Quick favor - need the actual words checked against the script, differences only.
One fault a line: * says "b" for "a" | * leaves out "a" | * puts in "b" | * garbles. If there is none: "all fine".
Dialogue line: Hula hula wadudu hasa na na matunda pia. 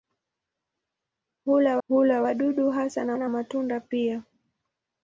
all fine